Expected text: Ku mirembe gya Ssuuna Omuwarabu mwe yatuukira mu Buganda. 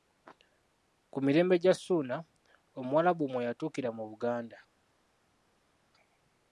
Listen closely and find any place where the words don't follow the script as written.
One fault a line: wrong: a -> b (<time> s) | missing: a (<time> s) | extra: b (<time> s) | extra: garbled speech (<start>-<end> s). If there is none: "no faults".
no faults